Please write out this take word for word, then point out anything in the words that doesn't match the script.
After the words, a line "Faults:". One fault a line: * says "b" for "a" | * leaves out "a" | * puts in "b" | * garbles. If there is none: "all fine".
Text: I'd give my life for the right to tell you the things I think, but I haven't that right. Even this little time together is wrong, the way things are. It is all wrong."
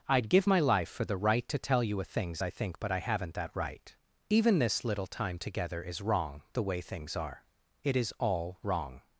I'd give my life for the right to tell you a things I think, but I haven't that right. Even this little time together is wrong, the way things are. It is all wrong."
Faults:
* says "a" for "the"